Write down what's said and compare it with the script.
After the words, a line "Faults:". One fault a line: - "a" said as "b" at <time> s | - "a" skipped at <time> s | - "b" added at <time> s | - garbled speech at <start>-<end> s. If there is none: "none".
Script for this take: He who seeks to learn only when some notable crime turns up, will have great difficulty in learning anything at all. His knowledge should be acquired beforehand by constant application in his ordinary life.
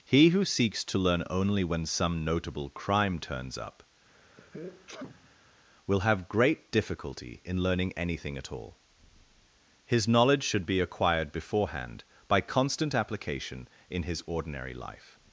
He who seeks to learn only when some notable crime turns up, will have great difficulty in learning anything at all. His knowledge should be acquired beforehand by constant application in his ordinary life.
Faults:
none